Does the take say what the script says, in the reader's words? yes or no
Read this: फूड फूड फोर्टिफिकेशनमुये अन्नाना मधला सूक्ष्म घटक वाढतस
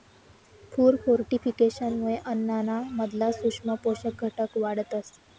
no